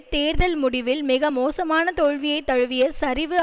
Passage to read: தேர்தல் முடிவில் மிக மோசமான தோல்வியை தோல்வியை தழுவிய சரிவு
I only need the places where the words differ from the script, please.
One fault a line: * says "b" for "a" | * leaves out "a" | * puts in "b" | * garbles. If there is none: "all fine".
* leaves out "தோல்வியை"